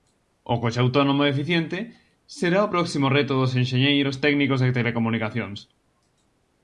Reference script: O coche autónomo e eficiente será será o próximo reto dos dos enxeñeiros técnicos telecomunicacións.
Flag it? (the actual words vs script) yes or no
yes